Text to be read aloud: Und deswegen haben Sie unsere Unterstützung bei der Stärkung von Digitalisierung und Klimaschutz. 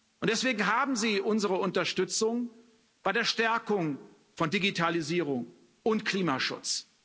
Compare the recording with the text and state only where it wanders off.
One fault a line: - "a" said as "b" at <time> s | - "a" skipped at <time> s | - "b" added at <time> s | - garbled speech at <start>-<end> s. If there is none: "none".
none